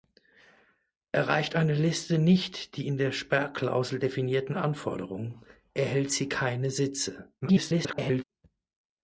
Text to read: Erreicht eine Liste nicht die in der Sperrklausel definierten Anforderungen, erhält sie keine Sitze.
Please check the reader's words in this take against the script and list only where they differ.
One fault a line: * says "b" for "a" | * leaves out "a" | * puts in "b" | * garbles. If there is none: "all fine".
* garbles